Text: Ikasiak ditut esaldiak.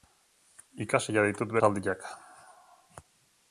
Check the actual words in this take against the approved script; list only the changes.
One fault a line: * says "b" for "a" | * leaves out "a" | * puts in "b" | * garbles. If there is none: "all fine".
all fine